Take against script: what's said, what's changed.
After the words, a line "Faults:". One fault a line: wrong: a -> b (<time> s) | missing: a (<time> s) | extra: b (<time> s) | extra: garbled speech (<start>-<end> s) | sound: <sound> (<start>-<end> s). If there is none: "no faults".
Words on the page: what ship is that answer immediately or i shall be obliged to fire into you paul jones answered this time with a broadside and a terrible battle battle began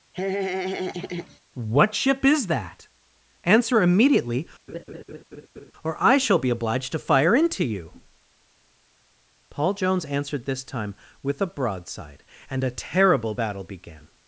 what ship is that answer immediately or i shall be obliged to fire into you paul jones answered this time with a broadside and a terrible battle began
Faults:
sound: laugh (0.1-1.4 s)
sound: laugh (4.7-5.7 s)
missing: battle (13.6 s)